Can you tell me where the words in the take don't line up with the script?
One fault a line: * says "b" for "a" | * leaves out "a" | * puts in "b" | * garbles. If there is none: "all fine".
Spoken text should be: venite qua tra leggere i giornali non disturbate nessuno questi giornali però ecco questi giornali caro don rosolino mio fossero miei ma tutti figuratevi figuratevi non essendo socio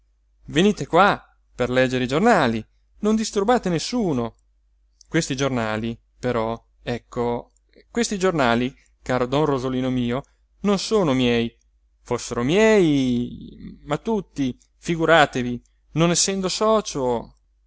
* says "per" for "tra"
* puts in "non sono miei"
* leaves out "figuratevi"